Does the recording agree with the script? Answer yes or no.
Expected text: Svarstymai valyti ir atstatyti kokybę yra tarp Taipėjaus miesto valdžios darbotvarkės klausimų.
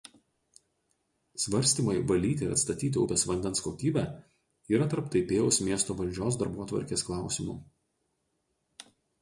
no